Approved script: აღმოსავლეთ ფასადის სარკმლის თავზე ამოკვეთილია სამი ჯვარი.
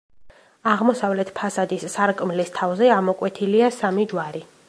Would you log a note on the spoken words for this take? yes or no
no